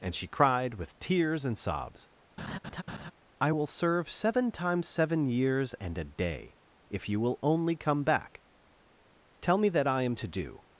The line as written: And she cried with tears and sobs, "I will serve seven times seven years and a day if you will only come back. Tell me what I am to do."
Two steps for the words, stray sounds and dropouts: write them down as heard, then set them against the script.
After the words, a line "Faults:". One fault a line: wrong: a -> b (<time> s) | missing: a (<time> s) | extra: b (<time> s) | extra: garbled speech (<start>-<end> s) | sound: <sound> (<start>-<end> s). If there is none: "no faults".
And she cried with tears and sobs, "I will serve seven times seven years and a day if you will only come back. Tell me that I am to do."
Faults:
sound: laugh (2.4-3.1 s)
wrong: what -> that (9.7 s)